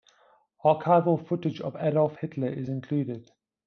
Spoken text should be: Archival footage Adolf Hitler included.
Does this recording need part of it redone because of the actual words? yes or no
yes